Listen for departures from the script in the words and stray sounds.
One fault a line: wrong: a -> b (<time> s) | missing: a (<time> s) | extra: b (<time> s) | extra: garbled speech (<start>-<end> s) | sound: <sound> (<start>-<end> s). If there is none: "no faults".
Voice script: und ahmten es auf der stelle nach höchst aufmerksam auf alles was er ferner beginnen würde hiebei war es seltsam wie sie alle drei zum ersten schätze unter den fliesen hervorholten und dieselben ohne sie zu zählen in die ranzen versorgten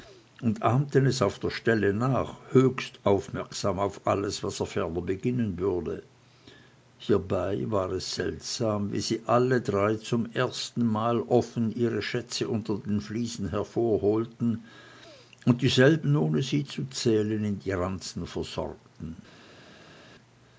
extra: mal offen ihre (10.9 s)